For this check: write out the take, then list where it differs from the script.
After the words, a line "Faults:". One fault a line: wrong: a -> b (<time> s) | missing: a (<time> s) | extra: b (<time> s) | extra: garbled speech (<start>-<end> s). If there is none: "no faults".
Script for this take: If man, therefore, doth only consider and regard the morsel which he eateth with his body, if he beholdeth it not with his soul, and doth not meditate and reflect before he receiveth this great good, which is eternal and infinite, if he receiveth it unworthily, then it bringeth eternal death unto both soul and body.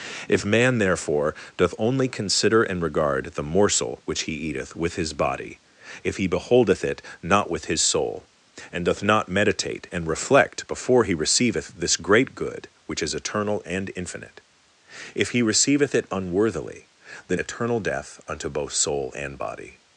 If man, therefore, doth only consider and regard the morsel which he eateth with his body, if he beholdeth it not with his soul, and doth not meditate and reflect before he receiveth this great good, which is eternal and infinite, if he receiveth it unworthily, then eternal death unto both soul and body.
Faults:
missing: it bringeth (17.4 s)